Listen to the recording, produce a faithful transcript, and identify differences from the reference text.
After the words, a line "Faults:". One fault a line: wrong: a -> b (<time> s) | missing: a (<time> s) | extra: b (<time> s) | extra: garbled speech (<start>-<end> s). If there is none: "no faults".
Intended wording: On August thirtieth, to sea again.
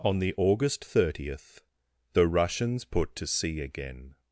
On the August thirtieth, the Russians put to sea again.
Faults:
extra: the (0.2 s)
extra: the Russians put (2.1 s)